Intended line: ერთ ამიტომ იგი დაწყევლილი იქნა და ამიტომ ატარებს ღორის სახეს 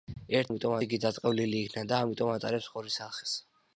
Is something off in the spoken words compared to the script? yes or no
no